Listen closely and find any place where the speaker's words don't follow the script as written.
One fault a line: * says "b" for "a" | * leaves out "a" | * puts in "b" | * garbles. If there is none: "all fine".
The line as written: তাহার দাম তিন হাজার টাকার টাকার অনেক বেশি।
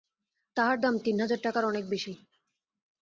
* leaves out "টাকার"